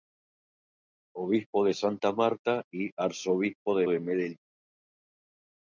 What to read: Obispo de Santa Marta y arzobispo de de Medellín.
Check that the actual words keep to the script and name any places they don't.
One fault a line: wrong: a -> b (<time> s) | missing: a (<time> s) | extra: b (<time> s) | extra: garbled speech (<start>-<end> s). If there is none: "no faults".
no faults